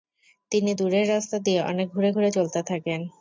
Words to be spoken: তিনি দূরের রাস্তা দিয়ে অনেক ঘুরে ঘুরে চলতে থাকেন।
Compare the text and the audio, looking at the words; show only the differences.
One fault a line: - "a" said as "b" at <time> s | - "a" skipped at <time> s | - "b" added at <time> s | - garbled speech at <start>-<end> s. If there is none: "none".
none